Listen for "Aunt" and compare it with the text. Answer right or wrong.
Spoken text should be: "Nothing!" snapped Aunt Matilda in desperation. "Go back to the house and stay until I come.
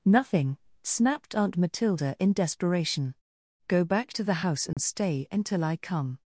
right